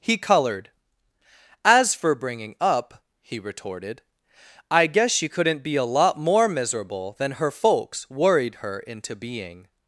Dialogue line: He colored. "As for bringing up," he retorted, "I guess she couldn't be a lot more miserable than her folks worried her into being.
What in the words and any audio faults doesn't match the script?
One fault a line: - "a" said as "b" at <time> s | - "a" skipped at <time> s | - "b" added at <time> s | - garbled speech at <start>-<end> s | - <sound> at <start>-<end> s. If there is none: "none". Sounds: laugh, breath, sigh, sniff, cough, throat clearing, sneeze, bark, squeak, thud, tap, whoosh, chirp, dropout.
none